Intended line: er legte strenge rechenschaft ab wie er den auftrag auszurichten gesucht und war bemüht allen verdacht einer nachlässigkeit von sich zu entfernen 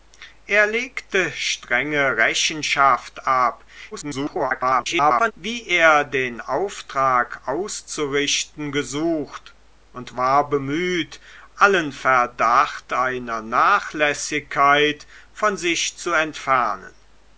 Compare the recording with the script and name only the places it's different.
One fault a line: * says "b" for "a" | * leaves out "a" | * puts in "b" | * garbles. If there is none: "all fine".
* garbles